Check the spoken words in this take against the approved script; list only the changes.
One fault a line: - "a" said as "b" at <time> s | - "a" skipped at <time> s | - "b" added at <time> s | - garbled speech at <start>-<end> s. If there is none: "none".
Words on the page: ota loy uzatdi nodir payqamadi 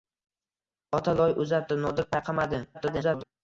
- garbled speech at 2.7-3.2 s